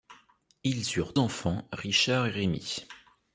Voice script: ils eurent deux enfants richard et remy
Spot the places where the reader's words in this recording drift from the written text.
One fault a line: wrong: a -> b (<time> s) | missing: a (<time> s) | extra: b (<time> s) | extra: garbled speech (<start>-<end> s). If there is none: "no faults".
missing: deux (1.1 s)